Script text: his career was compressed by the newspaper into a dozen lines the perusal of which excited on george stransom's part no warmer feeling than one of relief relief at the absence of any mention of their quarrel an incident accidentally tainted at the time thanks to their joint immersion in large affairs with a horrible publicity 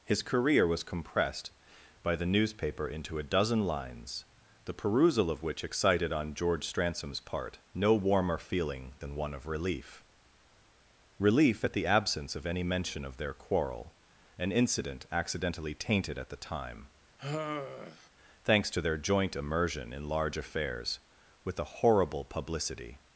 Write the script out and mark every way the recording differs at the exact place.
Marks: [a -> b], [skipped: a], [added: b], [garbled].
his career was compressed by the newspaper into a dozen lines the perusal of which excited on george stransom's part no warmer feeling than one of relief relief at the absence of any mention of their quarrel an incident accidentally tainted at the time thanks to their joint immersion in large affairs with a horrible publicity